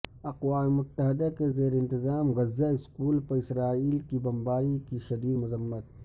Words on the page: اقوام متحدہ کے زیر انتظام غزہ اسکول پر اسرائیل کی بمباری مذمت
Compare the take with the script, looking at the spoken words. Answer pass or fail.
fail